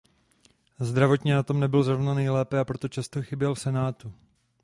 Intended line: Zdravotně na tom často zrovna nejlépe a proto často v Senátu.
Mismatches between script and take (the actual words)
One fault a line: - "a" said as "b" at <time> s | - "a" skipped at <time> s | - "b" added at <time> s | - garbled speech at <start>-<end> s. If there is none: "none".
- "často" said as "nebyl" at 1.6 s
- "chyběl" added at 3.2 s